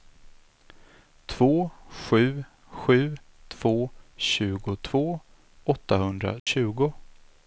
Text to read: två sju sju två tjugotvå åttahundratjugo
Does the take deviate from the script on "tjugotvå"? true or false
false